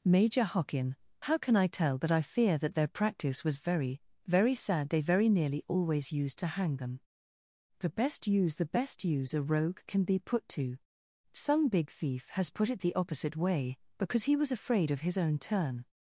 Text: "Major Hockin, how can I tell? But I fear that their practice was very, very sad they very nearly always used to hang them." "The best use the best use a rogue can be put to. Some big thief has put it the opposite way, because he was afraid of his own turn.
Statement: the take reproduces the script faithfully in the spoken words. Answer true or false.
true